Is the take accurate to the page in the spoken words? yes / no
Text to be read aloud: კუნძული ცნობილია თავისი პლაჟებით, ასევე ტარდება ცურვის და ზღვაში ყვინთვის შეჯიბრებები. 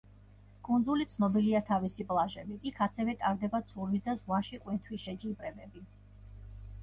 no